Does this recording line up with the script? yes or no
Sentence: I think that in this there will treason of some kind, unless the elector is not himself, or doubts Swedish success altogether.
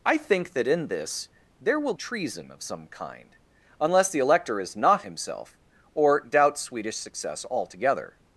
yes